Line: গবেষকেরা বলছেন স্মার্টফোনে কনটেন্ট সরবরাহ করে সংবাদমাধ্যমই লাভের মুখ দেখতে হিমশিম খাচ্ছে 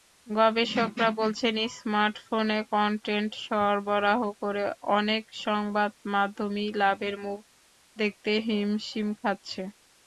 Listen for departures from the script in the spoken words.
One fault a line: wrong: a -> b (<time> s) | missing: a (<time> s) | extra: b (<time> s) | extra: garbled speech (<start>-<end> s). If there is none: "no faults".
extra: অনেক (4.9 s)